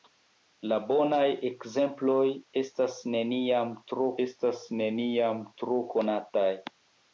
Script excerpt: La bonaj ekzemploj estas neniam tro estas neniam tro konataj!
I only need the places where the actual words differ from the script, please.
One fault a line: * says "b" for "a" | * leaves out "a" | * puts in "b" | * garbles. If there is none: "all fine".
all fine